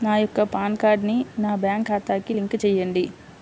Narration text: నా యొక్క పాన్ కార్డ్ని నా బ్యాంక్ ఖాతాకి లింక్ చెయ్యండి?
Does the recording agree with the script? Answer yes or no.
yes